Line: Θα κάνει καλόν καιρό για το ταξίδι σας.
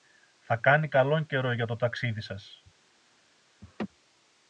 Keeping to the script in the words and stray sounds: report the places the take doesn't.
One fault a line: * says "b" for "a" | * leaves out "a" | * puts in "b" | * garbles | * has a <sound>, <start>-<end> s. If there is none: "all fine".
* has a laugh, 3.6-3.9 s